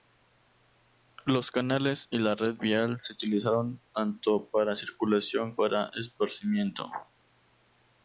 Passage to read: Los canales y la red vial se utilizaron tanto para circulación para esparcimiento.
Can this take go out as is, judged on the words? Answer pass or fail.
pass